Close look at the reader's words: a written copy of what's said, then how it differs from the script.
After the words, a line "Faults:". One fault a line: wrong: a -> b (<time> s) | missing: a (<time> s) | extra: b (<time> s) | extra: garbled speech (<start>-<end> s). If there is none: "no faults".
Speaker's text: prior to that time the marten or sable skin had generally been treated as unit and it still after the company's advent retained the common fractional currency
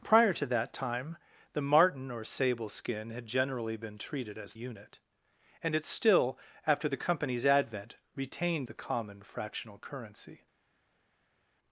prior to that time the marten or sable skin had generally been treated as unit and it still after the company's advent retained the common fractional currency
Faults:
no faults